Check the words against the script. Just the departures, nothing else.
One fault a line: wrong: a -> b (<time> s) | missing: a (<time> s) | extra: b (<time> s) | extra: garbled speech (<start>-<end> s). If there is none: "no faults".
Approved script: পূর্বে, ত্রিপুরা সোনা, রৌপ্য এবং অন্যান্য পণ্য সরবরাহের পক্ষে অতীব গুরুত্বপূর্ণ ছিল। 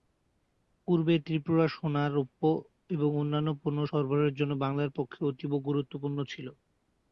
extra: জন্য বাংলার (4.4 s)